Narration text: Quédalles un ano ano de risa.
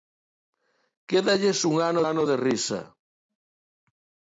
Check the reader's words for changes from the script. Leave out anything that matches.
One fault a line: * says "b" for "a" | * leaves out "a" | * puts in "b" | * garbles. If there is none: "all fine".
all fine